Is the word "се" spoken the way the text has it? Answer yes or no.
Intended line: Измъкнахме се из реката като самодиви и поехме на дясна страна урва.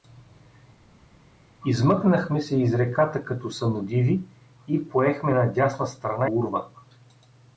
yes